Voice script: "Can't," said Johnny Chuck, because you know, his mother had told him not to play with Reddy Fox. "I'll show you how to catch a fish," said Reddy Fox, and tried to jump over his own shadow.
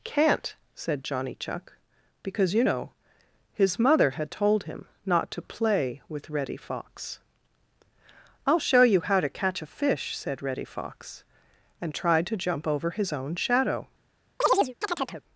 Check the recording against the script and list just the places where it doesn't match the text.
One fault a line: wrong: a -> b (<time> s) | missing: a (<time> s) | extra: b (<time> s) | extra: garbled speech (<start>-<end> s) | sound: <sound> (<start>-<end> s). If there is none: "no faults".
sound: chirp (14.4-15.2 s)